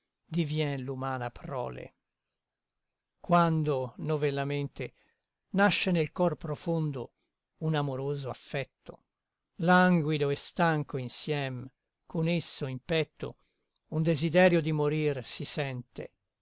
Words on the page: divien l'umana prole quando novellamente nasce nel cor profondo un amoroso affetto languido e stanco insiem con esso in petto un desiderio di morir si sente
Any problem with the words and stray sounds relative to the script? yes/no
no